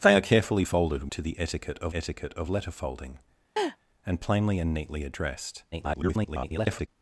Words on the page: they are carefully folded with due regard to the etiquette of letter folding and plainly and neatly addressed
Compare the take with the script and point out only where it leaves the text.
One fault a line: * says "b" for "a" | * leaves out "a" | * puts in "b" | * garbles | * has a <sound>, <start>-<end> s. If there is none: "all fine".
* says "to the etiquette of" for "with due regard to the"
* has a laugh, 3.6-3.8 s
* garbles